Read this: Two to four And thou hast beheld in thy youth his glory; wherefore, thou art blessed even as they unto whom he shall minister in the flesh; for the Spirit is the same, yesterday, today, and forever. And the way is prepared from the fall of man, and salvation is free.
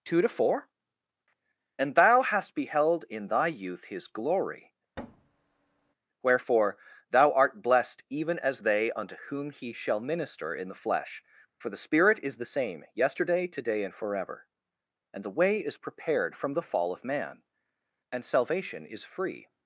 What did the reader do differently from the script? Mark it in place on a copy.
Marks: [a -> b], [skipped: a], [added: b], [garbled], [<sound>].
Two to four And thou hast beheld in thy youth his glory; [thud] wherefore, thou art blessed even as they unto whom he shall minister in the flesh; for the Spirit is the same, yesterday, today, and forever. And the way is prepared from the fall of man, and salvation is free.